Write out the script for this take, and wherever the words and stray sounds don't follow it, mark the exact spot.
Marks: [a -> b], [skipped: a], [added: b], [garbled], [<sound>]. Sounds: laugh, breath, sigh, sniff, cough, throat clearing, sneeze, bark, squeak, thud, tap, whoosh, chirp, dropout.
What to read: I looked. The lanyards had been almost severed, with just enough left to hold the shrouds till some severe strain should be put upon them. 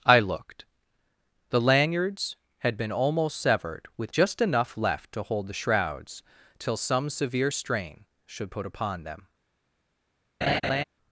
I looked. The lanyards had been almost severed, with just enough left to hold the shrouds till some severe strain should [skipped: be] put upon them. [laugh]